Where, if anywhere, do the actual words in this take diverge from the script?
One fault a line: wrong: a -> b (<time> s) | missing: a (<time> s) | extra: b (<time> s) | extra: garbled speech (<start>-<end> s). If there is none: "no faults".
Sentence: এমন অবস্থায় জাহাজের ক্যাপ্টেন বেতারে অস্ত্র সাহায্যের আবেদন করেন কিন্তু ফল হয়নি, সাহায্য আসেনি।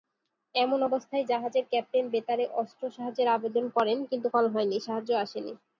no faults